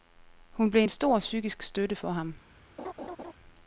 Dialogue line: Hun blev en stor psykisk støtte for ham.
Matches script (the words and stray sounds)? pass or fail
fail